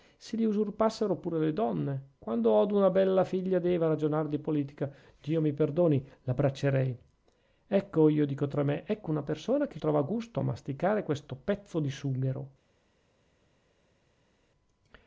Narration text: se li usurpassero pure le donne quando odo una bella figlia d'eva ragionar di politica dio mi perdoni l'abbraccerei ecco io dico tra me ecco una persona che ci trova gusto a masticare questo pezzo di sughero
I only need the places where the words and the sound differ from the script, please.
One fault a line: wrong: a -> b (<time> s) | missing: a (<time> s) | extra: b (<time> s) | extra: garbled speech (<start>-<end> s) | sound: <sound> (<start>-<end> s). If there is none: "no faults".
missing: ci (9.8 s)